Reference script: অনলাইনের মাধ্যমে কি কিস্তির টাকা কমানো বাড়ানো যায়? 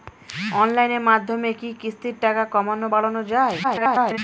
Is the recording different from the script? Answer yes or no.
yes